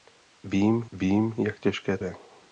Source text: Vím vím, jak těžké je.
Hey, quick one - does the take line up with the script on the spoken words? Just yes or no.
yes